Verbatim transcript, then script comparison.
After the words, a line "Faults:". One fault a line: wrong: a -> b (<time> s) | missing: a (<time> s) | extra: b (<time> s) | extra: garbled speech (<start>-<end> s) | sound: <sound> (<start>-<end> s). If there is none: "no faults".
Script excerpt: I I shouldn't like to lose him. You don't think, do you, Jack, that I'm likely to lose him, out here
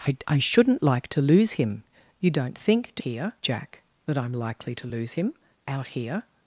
I I shouldn't like to lose him. You don't think, do here, Jack, that I'm likely to lose him, out here
Faults:
wrong: you -> here (3.0 s)